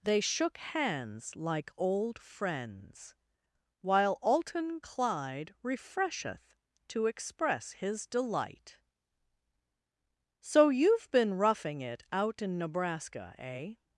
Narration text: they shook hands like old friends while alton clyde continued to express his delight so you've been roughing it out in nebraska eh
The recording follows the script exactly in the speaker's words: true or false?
false